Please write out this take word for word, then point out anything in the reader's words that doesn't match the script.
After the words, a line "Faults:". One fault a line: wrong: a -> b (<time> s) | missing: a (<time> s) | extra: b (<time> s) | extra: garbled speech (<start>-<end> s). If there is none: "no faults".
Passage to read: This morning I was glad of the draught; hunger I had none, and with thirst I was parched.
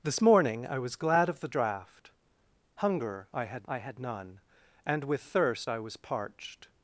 This morning I was glad of the draught; hunger I had I had none, and with thirst I was parched.
Faults:
extra: I had (3.7 s)